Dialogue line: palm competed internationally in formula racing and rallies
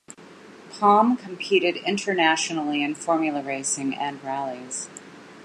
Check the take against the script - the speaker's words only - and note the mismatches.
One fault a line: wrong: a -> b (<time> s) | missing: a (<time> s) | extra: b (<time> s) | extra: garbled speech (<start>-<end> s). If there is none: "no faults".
no faults